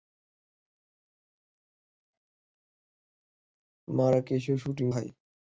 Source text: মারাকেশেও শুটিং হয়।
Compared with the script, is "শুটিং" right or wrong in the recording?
right